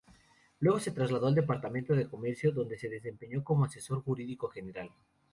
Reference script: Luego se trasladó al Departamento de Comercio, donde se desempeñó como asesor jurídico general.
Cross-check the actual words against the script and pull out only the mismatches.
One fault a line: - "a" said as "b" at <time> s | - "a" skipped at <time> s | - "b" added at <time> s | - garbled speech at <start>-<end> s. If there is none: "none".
none